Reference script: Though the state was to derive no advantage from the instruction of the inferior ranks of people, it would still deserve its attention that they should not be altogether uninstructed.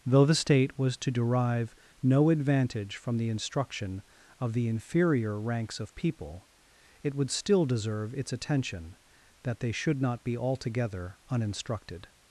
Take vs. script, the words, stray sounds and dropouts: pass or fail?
pass